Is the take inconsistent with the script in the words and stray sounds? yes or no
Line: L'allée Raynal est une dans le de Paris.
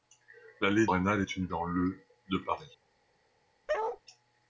yes